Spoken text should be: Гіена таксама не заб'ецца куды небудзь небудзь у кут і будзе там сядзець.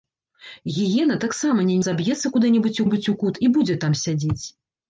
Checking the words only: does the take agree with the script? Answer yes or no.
yes